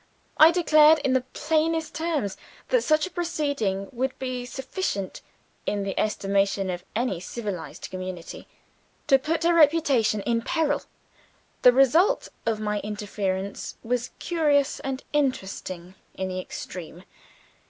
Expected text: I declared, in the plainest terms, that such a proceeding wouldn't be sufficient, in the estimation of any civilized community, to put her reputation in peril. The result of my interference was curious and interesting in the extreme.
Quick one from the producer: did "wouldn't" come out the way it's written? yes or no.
no